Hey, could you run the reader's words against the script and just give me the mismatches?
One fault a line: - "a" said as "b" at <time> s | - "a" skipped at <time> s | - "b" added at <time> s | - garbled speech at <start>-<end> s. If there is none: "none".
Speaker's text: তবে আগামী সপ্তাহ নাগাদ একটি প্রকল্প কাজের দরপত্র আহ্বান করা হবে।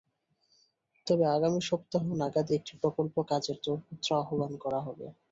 none